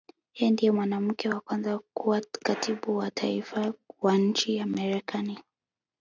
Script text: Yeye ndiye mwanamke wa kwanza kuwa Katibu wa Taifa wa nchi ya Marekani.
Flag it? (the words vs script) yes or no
no